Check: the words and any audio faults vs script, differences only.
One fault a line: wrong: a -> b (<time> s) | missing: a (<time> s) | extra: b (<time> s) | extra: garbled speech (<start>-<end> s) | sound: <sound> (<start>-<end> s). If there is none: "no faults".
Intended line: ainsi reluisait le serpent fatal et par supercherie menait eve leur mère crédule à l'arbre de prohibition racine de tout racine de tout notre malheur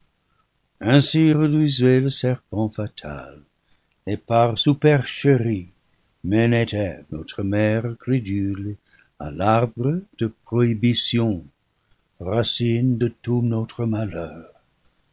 wrong: leur -> notre (7.1 s)
missing: racine de tout (13.4 s)